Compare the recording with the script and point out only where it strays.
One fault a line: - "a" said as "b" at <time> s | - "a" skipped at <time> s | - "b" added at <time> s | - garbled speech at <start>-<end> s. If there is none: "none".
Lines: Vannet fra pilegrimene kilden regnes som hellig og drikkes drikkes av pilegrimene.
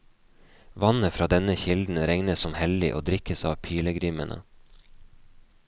- "pilegrimene" said as "denne" at 1.3 s
- "drikkes" skipped at 3.4 s